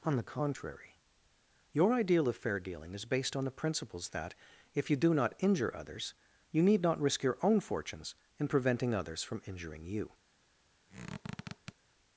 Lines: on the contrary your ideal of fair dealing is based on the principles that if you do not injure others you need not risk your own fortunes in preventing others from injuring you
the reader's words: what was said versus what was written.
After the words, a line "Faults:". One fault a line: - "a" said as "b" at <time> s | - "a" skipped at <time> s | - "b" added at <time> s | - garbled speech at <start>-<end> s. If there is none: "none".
on the contrary your ideal of fair dealing is based on the principles that if you do not injure others you need not risk your own fortunes in preventing others from injuring you
Faults:
none